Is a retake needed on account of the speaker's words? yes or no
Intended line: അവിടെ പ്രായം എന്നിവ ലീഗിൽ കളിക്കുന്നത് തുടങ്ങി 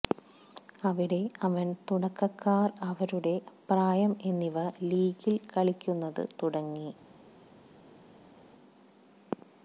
yes